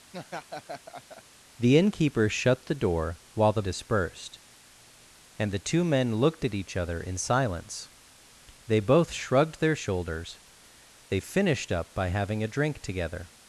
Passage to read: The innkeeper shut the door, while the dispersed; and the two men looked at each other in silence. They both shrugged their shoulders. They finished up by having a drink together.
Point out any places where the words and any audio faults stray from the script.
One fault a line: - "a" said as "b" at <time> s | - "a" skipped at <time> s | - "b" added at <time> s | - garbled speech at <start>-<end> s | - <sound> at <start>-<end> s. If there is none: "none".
- laugh at 0.1-1.2 s